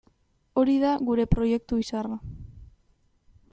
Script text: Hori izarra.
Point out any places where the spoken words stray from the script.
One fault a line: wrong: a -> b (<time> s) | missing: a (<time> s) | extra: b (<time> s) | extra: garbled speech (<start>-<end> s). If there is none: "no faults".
extra: da gure proiektu (0.8 s)